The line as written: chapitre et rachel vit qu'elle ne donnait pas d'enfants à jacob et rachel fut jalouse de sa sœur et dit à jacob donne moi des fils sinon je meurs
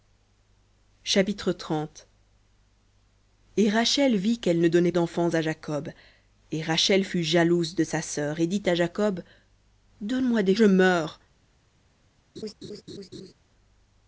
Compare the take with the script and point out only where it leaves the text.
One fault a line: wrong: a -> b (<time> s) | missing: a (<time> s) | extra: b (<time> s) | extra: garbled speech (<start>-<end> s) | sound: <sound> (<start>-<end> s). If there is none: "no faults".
missing: pas (4.9 s)
missing: fils sinon (10.5 s)
sound: laugh (12.4-13.3 s)